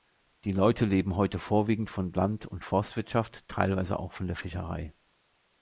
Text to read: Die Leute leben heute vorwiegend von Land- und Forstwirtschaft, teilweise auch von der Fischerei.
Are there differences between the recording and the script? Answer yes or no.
no